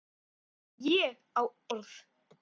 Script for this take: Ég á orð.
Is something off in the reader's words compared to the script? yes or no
no